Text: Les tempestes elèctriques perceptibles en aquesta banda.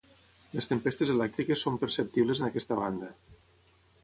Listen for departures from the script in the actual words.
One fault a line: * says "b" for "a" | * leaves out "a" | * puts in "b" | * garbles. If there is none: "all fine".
* puts in "són"